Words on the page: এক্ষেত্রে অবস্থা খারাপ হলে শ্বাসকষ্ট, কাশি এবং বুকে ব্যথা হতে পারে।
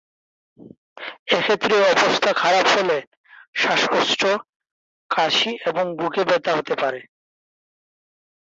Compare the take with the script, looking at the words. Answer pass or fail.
pass